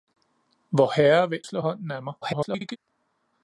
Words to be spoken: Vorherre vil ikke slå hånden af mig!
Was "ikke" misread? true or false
true